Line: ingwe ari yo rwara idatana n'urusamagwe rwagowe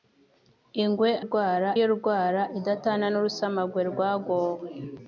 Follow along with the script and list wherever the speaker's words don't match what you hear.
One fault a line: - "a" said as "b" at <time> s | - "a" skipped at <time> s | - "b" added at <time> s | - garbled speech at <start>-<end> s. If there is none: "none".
- "ari" said as "rwara" at 1.2 s